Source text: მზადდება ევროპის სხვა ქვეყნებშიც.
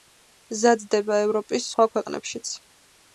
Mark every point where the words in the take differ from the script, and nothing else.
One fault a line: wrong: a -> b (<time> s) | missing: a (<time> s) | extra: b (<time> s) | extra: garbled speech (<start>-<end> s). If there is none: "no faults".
no faults